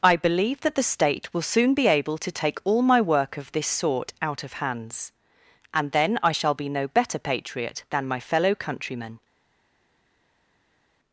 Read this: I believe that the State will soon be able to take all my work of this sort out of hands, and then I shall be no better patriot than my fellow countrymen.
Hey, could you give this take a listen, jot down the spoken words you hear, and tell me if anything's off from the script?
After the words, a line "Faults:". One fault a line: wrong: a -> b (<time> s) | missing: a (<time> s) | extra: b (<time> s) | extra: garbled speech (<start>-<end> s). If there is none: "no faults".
I believe that the State will soon be able to take all my work of this sort out of hands, and then I shall be no better patriot than my fellow countrymen.
Faults:
no faults